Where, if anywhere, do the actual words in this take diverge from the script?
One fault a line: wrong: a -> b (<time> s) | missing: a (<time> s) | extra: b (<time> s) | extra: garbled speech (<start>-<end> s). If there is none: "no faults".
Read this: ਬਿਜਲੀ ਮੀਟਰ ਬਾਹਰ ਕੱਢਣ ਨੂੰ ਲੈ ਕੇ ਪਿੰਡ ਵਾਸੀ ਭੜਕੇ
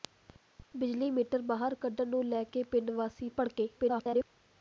extra: garbled speech (3.8-4.2 s)